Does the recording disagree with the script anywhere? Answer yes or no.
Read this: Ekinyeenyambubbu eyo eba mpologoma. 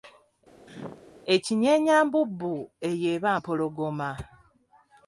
no